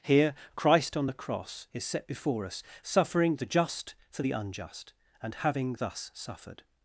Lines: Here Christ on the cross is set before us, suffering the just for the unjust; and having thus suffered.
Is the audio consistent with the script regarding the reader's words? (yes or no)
yes